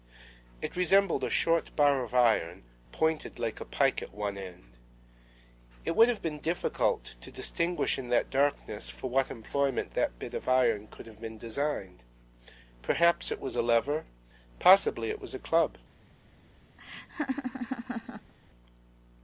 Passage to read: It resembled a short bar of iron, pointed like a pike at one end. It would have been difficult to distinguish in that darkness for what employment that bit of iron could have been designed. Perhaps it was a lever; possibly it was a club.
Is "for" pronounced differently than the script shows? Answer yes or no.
no